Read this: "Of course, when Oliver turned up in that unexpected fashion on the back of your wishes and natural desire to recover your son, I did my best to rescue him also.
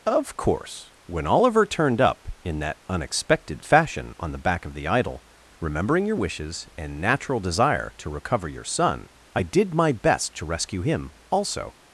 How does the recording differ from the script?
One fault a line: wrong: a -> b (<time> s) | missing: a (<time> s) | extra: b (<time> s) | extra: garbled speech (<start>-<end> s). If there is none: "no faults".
extra: the idol remembering (4.7 s)